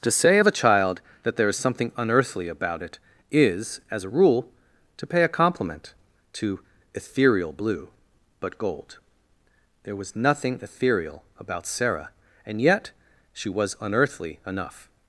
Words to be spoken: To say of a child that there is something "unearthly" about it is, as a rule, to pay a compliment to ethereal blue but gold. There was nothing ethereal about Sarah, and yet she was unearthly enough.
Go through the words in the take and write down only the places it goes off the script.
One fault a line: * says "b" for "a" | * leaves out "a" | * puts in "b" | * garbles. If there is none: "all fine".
all fine